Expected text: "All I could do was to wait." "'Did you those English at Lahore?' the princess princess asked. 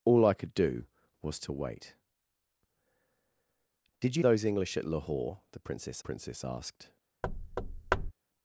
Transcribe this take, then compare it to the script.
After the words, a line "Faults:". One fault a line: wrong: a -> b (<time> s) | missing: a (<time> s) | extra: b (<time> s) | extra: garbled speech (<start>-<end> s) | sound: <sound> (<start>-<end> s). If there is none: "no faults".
"All I could do was to wait." "'Did you those English at Lahore?' the princess princess asked.
Faults:
sound: thud (7.2-8.1 s)